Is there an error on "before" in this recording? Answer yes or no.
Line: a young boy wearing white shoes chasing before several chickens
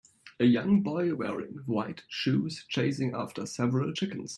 yes